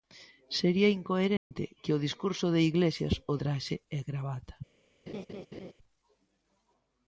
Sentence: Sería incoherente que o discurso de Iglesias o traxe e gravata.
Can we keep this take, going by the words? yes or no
yes